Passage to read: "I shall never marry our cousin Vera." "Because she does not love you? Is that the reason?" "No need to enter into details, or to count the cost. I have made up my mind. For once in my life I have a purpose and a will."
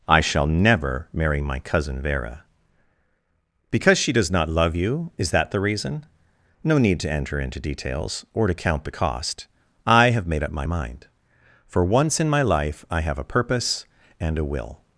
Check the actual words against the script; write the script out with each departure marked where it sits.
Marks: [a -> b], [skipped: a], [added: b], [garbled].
"I shall never marry [our -> my] cousin Vera." "Because she does not love you? Is that the reason?" "No need to enter into details, or to count the cost. I have made up my mind. For once in my life I have a purpose and a will."